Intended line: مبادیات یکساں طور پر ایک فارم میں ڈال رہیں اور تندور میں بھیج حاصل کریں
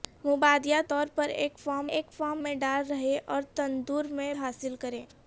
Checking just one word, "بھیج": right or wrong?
wrong